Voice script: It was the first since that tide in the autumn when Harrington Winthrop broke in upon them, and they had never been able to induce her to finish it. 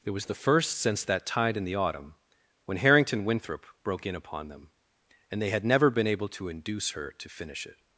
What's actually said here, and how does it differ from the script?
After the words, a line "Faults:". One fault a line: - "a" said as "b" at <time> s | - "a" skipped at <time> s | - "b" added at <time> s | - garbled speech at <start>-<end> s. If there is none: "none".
It was the first since that tide in the autumn when Harrington Winthrop broke in upon them, and they had never been able to induce her to finish it.
Faults:
none